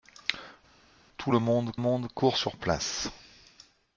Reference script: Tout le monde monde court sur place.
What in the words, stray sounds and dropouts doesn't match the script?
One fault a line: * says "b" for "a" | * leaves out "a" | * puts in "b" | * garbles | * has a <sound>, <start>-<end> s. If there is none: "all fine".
all fine